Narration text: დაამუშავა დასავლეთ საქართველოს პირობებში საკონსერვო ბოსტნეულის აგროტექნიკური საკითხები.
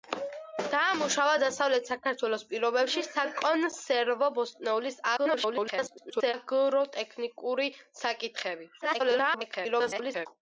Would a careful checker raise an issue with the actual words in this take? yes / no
yes